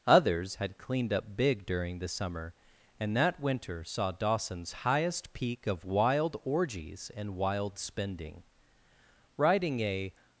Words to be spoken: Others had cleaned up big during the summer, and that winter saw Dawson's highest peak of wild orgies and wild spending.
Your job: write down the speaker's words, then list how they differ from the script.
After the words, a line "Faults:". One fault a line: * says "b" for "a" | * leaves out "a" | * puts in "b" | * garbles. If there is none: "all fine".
Others had cleaned up big during the summer, and that winter saw Dawson's highest peak of wild orgies and wild spending. Riding a
Faults:
* puts in "Riding a"